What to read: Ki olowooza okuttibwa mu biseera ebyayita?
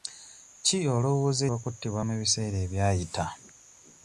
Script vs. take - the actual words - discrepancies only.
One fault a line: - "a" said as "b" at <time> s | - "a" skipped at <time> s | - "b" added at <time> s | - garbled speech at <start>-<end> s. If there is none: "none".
none